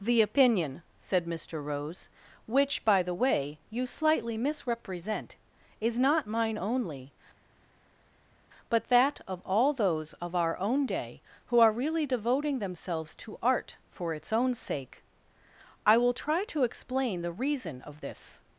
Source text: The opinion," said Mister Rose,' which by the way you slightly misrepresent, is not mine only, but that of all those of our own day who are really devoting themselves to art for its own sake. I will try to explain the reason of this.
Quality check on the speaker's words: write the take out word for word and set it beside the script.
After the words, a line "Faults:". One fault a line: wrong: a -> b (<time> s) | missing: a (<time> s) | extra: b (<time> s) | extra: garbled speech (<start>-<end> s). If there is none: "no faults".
The opinion," said Mister Rose,' which by the way you slightly misrepresent, is not mine only, but that of all those of our own day who are really devoting themselves to art for its own sake. I will try to explain the reason of this.
Faults:
no faults